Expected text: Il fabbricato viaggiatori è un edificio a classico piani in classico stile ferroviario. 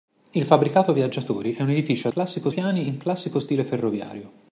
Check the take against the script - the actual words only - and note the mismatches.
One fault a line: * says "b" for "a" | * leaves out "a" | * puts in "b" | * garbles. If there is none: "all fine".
all fine